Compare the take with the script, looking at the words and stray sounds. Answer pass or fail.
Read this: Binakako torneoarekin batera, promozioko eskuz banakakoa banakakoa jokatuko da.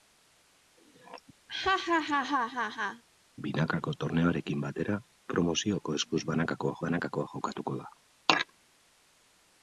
fail